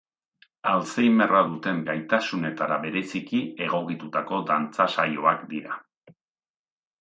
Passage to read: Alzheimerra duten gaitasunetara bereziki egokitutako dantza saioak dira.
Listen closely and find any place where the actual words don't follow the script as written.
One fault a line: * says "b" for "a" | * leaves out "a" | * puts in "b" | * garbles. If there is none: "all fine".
all fine